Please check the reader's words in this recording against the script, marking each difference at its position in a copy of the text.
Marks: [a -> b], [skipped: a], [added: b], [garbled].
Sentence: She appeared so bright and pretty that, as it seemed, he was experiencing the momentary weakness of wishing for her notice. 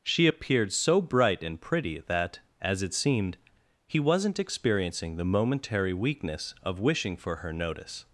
She appeared so bright and pretty that, as it seemed, he [was -> wasn't] experiencing the momentary weakness of wishing for her notice.